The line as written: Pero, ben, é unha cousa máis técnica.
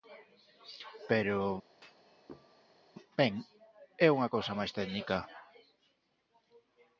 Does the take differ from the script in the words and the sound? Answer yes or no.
yes